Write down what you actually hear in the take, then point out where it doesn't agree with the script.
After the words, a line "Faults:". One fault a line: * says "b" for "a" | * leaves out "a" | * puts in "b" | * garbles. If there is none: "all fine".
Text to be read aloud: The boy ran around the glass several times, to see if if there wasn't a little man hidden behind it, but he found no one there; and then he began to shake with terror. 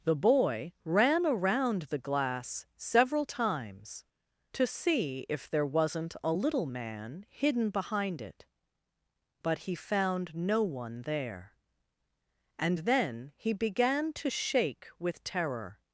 The boy ran around the glass several times, to see if there wasn't a little man hidden behind it, but he found no one there; and then he began to shake with terror.
Faults:
* leaves out "if"